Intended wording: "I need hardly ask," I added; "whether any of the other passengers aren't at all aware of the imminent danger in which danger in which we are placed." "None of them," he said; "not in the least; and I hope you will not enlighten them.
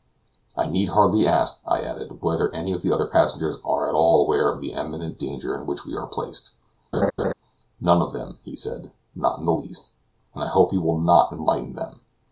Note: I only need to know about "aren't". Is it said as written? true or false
false